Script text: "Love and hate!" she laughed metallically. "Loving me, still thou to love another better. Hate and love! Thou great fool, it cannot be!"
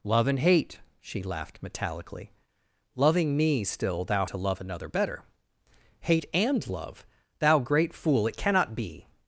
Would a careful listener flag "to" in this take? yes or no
no